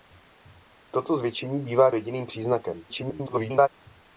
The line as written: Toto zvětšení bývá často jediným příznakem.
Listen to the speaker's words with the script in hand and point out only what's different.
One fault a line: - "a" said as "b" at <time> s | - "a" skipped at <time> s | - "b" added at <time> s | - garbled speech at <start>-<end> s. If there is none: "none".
- "často" skipped at 1.9 s
- garbled speech at 2.9-3.7 s